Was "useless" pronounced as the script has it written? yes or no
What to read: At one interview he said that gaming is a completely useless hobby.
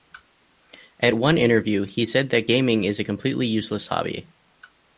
yes